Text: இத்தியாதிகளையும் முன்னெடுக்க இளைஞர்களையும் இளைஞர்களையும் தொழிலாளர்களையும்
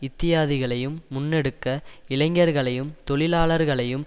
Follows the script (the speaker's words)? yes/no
no